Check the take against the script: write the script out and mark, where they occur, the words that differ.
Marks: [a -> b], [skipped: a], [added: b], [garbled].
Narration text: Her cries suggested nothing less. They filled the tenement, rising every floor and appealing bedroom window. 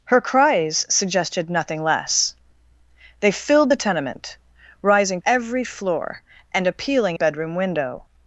Her cries suggested nothing less. They filled the tenement, rising every floor and appealing bedroom window.